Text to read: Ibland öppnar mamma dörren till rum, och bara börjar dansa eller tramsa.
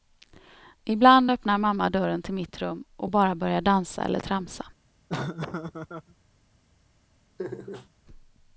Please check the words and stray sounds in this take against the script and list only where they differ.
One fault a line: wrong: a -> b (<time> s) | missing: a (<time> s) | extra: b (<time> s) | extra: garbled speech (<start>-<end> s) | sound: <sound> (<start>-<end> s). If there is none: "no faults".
extra: mitt (2.3 s)
sound: laugh (5.1-6.2 s)
sound: laugh (7.4-7.9 s)